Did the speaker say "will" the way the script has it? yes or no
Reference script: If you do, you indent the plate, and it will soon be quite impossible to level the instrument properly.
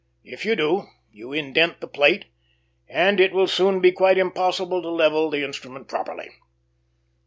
yes